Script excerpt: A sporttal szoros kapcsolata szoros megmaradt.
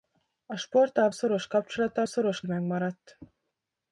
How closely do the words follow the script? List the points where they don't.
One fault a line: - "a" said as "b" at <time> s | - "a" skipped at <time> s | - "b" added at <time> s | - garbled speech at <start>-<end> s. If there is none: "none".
none